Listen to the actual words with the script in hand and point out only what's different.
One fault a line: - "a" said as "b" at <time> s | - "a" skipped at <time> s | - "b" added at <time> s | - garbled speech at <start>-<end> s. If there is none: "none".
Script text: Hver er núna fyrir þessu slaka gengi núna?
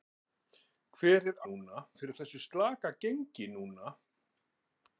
none